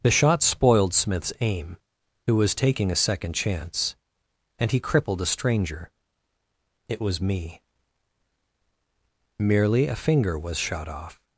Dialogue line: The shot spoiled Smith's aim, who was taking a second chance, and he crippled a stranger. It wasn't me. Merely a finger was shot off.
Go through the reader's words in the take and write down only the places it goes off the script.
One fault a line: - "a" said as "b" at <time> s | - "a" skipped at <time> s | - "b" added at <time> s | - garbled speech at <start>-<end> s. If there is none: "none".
- "wasn't" said as "was" at 7.0 s